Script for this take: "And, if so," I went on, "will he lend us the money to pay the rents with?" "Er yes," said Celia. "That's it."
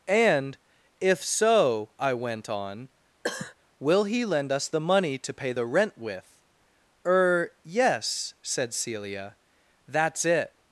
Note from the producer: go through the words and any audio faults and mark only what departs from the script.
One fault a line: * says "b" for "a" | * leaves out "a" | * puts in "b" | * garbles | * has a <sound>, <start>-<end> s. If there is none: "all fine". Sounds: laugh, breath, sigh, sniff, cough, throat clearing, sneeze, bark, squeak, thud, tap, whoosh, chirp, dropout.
* has a cough, 3.2-3.5 s
* says "rent" for "rents"